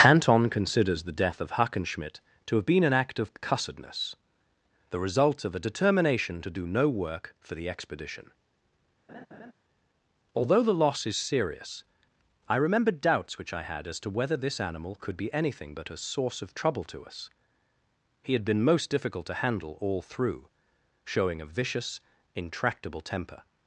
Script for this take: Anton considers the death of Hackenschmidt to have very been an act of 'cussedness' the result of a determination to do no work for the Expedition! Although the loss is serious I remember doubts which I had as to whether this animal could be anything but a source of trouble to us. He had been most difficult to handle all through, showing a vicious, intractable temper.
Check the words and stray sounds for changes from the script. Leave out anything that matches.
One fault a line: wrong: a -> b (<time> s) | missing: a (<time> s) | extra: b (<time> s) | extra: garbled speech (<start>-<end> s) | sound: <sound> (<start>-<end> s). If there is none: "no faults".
missing: very (2.6 s)
sound: laugh (9.1-9.5 s)